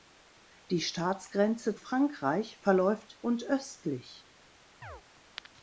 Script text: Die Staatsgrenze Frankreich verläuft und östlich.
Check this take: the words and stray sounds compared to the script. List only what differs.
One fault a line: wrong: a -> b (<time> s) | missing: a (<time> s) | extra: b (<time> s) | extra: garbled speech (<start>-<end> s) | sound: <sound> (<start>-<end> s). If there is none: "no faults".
sound: chirp (4.8-5.0 s)